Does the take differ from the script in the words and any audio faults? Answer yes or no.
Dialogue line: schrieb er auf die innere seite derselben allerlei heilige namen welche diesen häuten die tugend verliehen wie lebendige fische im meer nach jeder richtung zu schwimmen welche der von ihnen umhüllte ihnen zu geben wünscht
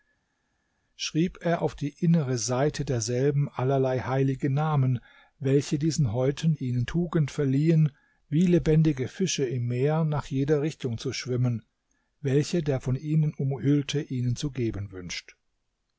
yes